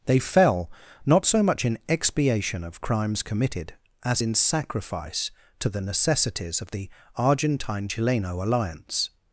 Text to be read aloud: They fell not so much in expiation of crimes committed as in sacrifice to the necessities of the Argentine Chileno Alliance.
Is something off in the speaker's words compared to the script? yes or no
no